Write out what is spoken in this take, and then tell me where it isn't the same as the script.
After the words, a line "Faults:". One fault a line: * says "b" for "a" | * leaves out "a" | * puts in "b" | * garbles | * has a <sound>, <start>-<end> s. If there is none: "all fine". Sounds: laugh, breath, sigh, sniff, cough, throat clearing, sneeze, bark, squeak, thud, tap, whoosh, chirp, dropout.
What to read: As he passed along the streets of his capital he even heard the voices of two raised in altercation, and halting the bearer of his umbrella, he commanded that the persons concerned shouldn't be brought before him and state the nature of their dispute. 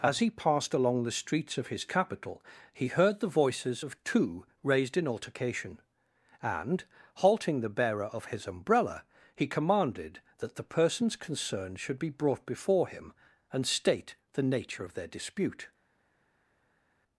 As he passed along the streets of his capital he heard the voices of two raised in altercation, and halting the bearer of his umbrella, he commanded that the persons concerned should be brought before him and state the nature of their dispute.
Faults:
* leaves out "even"
* says "should" for "shouldn't"